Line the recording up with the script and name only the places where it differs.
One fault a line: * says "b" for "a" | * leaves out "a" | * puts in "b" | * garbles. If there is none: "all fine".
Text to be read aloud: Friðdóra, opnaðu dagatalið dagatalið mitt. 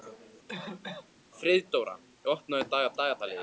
all fine